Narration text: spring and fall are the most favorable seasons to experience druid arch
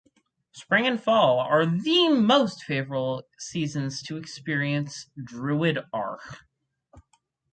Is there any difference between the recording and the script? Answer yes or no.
no